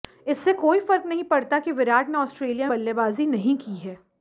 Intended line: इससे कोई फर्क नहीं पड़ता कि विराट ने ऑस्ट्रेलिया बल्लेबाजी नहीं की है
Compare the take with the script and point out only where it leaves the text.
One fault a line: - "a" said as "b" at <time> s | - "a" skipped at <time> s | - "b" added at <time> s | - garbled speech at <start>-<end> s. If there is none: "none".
none